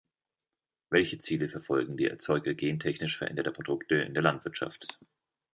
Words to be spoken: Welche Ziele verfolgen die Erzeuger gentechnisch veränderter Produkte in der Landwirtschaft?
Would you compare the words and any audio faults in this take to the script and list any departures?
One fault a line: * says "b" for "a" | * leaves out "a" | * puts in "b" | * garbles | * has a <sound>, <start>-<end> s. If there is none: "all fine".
all fine